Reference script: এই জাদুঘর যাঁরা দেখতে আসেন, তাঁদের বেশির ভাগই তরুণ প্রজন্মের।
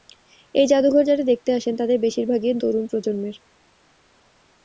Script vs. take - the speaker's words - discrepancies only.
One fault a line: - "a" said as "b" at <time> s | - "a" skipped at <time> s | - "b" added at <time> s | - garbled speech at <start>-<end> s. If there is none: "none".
none